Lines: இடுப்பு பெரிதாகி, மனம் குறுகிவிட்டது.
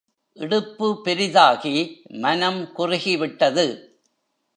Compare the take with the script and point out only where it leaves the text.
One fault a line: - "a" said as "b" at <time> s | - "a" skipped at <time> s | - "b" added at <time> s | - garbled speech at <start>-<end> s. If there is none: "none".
none